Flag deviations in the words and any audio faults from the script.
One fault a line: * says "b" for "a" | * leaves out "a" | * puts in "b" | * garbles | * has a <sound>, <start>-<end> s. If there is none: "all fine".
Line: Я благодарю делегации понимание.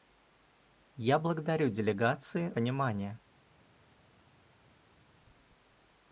all fine